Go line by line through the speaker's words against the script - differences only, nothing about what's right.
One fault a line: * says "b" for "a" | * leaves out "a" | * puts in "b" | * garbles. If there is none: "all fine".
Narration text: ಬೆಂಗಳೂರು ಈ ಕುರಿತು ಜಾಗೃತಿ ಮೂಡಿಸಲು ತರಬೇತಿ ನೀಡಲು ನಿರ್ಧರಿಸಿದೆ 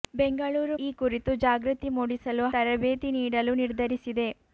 all fine